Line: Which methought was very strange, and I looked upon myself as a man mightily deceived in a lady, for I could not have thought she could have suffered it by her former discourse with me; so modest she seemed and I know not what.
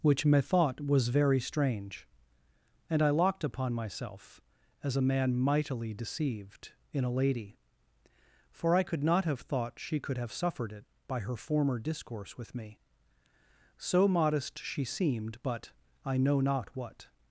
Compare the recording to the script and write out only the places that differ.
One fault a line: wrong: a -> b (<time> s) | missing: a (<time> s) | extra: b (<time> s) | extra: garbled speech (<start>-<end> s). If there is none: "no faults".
wrong: looked -> locked (3.1 s)
wrong: and -> but (15.4 s)